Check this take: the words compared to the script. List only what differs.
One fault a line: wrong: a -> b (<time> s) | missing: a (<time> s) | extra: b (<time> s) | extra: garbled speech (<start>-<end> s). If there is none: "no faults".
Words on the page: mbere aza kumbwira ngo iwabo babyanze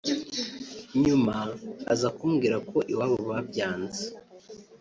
wrong: mbere -> nyuma (1.0 s)
wrong: ngo -> ko (2.7 s)